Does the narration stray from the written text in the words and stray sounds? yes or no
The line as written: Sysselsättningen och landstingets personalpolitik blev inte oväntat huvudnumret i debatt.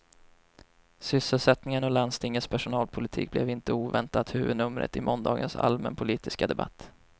yes